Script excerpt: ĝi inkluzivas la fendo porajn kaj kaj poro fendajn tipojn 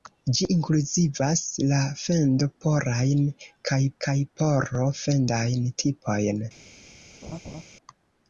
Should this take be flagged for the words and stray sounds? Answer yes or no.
yes